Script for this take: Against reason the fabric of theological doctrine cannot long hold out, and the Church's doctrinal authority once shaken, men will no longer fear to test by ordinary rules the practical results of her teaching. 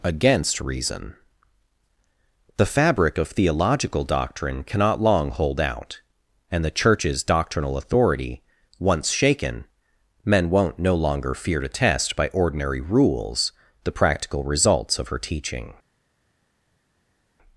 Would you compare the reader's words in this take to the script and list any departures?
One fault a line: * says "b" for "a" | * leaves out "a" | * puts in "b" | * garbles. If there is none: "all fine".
* says "won't" for "will"